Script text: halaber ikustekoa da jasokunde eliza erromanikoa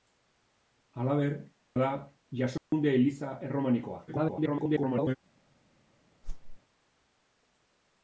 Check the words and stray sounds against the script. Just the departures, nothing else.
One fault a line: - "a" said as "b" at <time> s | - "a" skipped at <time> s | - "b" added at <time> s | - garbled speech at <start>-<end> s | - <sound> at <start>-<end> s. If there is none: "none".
- "ikustekoa" skipped at 1.4 s
- dropout at 2.6-2.7 s
- garbled speech at 4.1-5.2 s
- whoosh at 6.2-6.6 s